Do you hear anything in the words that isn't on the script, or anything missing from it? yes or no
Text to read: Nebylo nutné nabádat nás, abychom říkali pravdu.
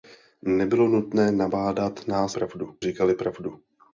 yes